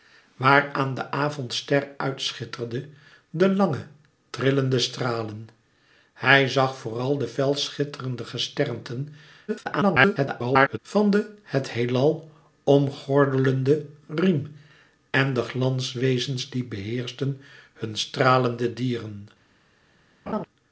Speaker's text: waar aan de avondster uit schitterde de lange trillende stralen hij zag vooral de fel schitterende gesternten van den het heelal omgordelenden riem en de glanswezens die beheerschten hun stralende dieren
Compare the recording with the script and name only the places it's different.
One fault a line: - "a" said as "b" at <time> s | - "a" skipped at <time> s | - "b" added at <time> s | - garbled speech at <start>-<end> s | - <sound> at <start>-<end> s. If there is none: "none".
- garbled speech at 9.5-10.8 s
- laugh at 20.3-20.5 s